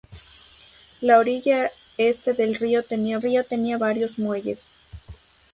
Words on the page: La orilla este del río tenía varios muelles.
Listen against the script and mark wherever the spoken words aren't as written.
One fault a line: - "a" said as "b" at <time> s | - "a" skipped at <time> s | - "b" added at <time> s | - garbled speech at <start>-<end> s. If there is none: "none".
- "río tenía" added at 3.2 s